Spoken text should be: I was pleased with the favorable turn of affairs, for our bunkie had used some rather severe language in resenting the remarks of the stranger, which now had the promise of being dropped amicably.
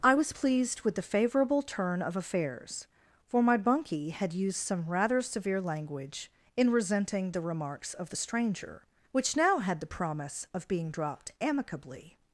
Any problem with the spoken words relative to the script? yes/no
yes